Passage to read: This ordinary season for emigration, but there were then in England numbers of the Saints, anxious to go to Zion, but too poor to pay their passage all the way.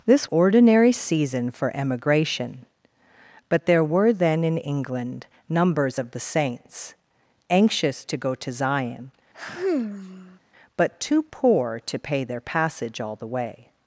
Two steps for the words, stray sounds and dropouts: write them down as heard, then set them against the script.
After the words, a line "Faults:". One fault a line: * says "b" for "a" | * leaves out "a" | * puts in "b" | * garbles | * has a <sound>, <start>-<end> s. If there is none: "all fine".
This ordinary season for emigration, but there were then in England numbers of the Saints, anxious to go to Zion, but too poor to pay their passage all the way.
Faults:
* has a sigh, 9.3-10.4 s